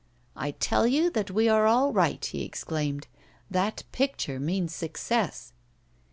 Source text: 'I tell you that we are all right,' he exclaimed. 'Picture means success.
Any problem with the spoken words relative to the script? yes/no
yes